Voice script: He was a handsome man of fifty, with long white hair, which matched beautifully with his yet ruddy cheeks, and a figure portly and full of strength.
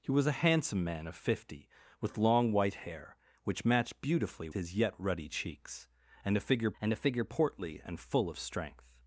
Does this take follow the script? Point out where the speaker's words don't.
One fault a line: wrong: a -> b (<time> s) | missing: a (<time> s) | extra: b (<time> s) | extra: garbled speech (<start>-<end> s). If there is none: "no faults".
missing: with (4.5 s)
extra: and a figure (6.8 s)